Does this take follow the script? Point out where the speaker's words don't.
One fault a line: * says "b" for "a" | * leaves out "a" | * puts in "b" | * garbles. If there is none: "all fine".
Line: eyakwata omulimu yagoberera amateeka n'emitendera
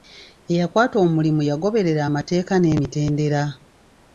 all fine